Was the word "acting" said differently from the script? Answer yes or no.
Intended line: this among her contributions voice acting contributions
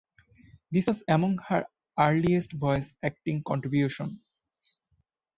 no